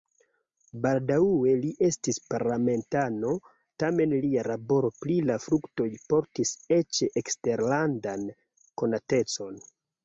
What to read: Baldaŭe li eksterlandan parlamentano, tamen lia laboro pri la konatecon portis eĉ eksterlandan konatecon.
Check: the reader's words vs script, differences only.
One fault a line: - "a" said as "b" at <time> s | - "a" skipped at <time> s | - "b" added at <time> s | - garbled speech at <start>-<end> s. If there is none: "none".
- "eksterlandan" said as "estis" at 1.9 s
- "konatecon" said as "fruktoj" at 5.5 s